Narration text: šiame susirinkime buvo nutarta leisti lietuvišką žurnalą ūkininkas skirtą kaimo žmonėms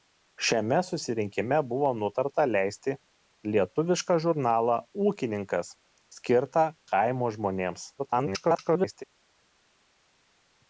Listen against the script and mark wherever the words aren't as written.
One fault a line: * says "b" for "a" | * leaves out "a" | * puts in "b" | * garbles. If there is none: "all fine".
* garbles